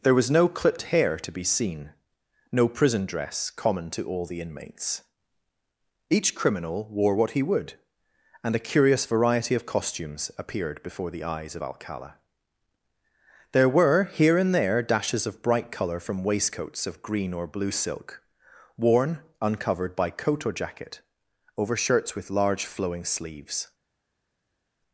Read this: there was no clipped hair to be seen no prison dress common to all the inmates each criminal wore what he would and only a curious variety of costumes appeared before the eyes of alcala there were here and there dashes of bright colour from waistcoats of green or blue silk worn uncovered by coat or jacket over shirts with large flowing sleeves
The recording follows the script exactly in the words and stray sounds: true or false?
false